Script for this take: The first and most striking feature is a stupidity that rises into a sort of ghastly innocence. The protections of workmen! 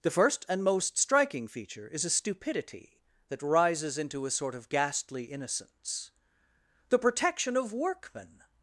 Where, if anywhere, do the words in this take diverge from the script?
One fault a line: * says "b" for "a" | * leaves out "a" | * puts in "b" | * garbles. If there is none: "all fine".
* says "protection" for "protections"